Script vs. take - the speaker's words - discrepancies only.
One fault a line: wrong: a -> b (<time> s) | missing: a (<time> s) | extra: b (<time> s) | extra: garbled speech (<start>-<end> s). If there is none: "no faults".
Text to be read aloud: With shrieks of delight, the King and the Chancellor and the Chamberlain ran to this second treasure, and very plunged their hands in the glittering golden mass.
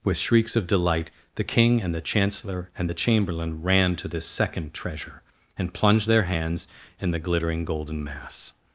missing: very (5.7 s)